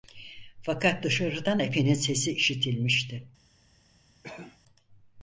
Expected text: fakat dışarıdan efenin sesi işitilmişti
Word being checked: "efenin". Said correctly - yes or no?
yes